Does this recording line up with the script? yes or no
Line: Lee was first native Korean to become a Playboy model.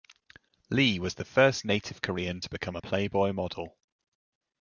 no